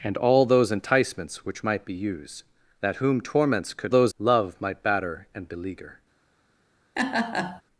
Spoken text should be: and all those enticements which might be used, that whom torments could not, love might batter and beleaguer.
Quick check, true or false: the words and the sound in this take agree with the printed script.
false